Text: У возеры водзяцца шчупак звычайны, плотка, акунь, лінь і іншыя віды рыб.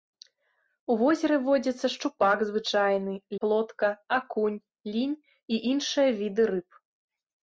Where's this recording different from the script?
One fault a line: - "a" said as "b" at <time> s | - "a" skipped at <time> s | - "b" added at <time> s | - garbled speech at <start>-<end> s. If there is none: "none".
none